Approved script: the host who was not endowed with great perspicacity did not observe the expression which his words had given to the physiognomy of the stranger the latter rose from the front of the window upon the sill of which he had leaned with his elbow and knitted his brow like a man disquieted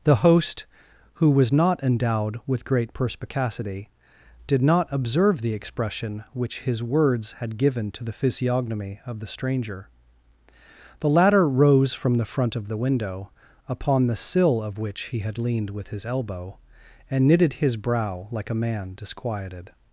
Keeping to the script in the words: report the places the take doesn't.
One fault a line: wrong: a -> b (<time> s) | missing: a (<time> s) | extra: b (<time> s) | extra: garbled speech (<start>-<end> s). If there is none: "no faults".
no faults